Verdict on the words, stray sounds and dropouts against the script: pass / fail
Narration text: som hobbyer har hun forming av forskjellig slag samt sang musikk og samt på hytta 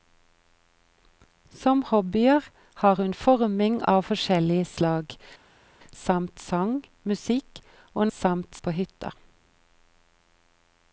pass